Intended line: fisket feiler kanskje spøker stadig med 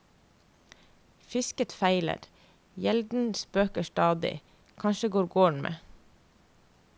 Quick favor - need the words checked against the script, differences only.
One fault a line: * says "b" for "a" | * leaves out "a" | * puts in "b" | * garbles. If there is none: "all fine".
* says "gjelden" for "kanskje"
* puts in "kanskje går gården"